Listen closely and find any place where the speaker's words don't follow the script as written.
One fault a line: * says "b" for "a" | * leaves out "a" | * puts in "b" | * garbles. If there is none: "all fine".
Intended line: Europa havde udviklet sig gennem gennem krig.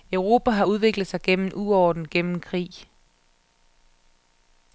* says "har" for "havde"
* puts in "uorden"